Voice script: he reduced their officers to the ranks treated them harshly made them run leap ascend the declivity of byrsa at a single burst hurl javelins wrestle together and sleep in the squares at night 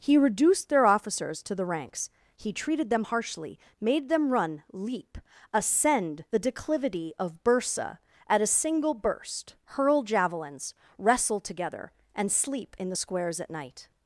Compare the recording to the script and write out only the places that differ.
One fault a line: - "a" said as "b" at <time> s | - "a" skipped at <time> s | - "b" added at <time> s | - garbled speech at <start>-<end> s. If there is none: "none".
- "he" added at 2.4 s